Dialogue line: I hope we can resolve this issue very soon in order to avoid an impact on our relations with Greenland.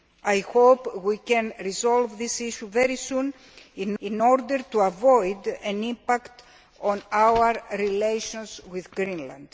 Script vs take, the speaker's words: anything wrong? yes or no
yes